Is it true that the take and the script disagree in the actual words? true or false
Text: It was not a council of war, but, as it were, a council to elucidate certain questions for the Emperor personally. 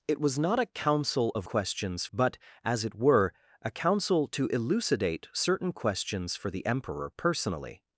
true